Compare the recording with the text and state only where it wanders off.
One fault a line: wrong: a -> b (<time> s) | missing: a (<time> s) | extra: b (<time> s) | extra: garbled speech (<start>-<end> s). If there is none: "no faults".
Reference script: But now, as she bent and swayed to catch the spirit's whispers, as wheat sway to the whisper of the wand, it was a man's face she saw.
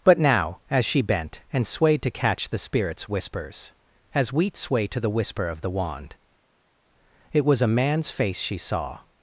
no faults